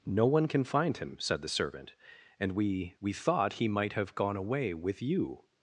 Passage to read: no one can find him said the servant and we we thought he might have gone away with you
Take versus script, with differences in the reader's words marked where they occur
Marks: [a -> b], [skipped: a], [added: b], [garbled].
no one can find him said the servant and we we thought he might have gone away with you